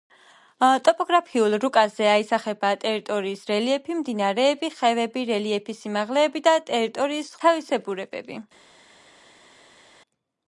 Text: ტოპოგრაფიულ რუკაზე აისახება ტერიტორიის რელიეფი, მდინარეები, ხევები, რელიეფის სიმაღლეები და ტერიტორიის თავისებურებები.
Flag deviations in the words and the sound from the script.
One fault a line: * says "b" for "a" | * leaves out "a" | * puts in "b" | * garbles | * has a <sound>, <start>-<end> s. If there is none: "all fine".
all fine